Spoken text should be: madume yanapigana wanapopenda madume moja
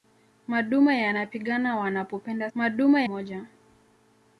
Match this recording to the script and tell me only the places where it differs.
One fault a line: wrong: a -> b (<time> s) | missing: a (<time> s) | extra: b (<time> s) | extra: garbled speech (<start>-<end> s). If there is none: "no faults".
no faults